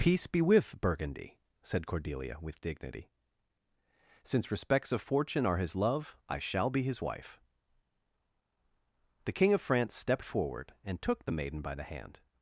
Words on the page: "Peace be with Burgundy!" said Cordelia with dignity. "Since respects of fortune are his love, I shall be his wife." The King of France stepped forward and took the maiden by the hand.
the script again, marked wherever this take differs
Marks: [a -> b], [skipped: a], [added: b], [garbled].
"Peace be with Burgundy!" said Cordelia with dignity. "Since respects of fortune are his love, I shall be his wife." The King of France stepped forward and took the maiden by the hand.